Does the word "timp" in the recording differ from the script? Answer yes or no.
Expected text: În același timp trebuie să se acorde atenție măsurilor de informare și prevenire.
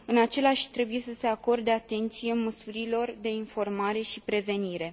yes